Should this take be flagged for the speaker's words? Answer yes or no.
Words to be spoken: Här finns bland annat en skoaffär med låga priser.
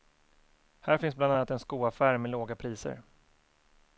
no